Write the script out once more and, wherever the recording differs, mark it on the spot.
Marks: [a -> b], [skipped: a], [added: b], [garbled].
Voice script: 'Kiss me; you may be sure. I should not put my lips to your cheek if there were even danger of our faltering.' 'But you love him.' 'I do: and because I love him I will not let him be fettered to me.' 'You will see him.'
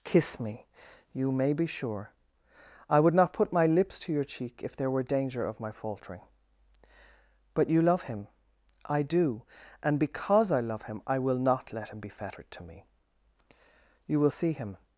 'Kiss me; you may be sure. I [should -> would] not put my lips to your cheek if there were [skipped: even] danger of [our -> my] faltering.' 'But you love him.' 'I do: and because I love him I will not let him be fettered to me.' 'You will see him.'